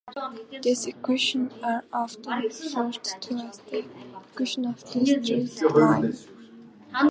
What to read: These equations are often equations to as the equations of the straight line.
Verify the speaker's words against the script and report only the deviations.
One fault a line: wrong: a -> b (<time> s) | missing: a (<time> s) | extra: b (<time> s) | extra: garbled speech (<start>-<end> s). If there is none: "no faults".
wrong: equations -> referred (2.4 s)